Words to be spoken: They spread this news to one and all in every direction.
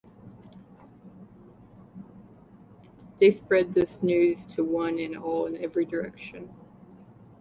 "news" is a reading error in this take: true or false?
false